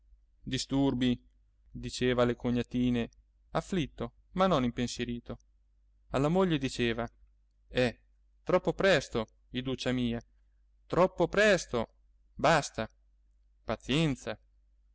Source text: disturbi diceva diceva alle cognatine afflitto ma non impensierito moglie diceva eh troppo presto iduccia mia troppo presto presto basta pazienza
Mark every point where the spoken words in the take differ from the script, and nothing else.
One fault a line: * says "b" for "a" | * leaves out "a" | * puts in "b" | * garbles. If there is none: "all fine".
* leaves out "diceva"
* puts in "alla"
* leaves out "presto"